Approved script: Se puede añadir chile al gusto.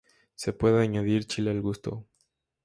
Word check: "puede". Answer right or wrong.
right